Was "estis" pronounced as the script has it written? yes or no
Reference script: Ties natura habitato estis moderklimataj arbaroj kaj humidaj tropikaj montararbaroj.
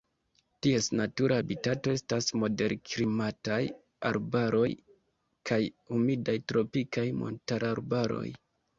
no